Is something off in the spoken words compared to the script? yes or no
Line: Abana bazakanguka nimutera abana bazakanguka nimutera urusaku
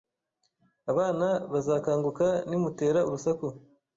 yes